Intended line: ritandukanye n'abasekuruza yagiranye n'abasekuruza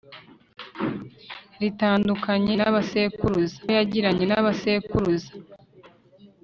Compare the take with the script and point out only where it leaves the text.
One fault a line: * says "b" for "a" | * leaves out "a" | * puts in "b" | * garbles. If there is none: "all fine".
all fine